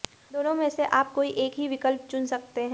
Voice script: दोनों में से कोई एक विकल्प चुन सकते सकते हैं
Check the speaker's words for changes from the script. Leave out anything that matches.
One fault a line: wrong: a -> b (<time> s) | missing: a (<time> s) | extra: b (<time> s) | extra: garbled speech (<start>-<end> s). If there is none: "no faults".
extra: आप (0.8 s)
extra: ही (1.6 s)
missing: सकते (2.6 s)